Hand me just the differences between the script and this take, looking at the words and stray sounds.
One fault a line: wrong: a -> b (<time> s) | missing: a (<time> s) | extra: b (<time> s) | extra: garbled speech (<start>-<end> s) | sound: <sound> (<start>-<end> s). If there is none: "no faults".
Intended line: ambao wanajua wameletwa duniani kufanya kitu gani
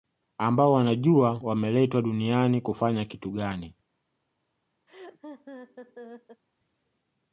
sound: laugh (4.9-6.4 s)